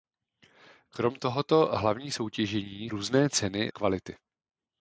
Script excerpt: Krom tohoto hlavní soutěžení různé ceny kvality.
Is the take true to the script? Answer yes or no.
yes